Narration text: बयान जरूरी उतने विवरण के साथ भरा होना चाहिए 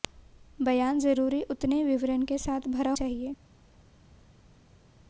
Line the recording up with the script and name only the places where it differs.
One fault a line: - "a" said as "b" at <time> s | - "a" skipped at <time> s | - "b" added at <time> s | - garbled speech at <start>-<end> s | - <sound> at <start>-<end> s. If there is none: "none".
- "होना" skipped at 2.9 s